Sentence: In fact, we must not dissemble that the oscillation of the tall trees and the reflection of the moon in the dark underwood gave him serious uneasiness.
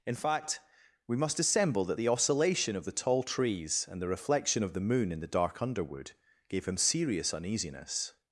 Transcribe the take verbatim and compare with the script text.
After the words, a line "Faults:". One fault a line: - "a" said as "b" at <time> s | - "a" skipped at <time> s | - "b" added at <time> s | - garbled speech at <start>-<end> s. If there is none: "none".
In fact, we must dissemble that the oscillation of the tall trees and the reflection of the moon in the dark underwood gave him serious uneasiness.
Faults:
- "not" skipped at 1.4 s